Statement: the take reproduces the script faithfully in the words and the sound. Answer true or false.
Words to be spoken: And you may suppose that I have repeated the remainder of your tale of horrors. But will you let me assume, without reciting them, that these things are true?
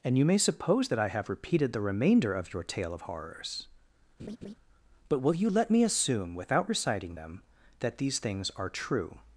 false